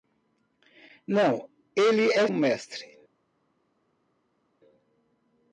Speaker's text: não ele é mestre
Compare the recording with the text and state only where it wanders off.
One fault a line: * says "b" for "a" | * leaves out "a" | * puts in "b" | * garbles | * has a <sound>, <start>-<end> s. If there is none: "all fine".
all fine